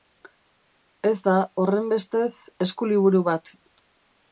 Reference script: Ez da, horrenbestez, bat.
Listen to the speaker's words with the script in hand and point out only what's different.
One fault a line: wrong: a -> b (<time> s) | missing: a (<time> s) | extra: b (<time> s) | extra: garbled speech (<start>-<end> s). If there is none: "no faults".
extra: eskuliburu (2.7 s)